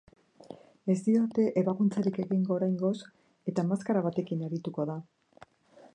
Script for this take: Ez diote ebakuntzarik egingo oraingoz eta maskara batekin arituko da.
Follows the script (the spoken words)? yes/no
yes